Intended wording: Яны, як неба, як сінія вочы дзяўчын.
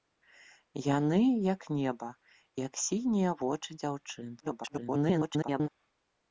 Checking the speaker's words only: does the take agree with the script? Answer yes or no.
no